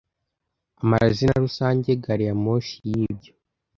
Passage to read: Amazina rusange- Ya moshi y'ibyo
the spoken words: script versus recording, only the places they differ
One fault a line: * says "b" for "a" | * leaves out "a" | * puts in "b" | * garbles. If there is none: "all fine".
* puts in "Gari"